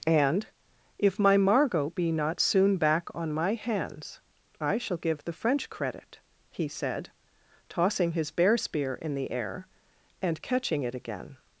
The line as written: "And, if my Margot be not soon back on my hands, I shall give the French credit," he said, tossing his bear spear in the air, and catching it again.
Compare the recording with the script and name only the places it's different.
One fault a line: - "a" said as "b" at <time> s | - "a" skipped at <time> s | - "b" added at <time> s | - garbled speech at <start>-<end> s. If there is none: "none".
none